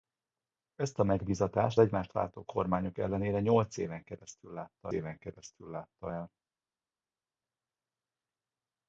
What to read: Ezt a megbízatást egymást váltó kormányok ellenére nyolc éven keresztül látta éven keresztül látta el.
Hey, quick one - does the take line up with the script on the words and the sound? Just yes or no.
yes